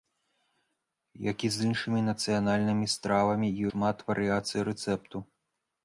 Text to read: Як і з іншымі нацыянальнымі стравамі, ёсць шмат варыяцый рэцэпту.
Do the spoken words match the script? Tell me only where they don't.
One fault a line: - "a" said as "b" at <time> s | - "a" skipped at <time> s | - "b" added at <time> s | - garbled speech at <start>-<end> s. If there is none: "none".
- "ёсць" skipped at 3.5 s